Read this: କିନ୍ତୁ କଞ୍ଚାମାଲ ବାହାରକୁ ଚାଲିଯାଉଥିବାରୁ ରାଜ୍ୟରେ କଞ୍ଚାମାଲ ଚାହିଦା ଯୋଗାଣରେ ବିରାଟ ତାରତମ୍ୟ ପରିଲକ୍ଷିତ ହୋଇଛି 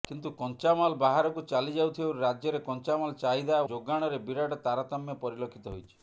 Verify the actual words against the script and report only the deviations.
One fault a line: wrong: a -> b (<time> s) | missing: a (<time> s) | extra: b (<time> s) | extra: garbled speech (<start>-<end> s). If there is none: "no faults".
no faults